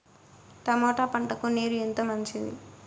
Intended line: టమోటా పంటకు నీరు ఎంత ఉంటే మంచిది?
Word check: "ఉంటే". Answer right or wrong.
wrong